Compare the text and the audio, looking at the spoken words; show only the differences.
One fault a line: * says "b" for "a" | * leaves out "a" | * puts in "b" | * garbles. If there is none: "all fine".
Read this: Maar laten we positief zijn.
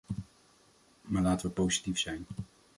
all fine